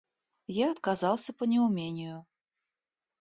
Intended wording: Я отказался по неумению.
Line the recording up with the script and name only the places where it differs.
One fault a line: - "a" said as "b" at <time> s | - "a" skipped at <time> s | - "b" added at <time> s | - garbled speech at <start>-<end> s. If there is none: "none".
none